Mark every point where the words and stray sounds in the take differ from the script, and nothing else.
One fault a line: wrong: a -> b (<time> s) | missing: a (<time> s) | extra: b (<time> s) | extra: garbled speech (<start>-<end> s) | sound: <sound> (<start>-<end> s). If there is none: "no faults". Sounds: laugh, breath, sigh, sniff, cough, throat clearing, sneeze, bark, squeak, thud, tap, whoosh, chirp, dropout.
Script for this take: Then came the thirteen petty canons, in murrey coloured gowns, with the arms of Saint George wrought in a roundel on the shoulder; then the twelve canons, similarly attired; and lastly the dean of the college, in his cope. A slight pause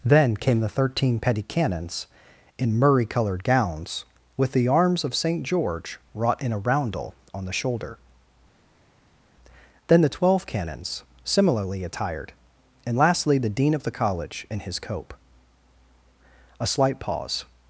no faults